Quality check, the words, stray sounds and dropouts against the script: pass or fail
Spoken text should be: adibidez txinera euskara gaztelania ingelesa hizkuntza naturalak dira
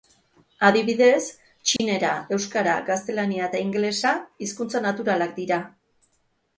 fail